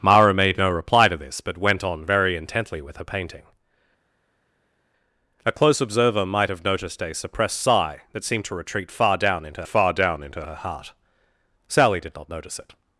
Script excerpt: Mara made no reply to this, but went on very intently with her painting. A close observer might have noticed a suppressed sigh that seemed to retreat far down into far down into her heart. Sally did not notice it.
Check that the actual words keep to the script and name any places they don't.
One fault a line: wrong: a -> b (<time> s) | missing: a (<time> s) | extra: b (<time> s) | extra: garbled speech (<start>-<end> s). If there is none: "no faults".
no faults